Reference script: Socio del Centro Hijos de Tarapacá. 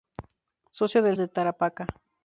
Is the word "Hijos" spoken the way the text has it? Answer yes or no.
no